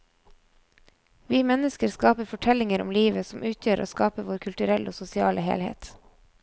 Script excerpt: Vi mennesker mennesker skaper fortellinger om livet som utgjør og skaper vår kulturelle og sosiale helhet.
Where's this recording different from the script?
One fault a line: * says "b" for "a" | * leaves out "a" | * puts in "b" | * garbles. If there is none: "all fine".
* leaves out "mennesker"